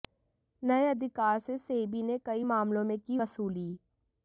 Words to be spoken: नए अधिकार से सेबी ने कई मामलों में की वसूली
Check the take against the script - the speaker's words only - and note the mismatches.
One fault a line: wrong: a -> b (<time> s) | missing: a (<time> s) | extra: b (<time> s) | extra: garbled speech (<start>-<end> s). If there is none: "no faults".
no faults